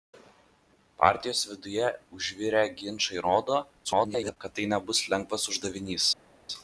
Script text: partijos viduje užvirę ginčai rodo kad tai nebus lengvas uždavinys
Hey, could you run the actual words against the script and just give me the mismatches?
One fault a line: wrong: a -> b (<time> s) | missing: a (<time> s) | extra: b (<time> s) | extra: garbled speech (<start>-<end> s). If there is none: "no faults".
extra: garbled speech (3.8-4.4 s)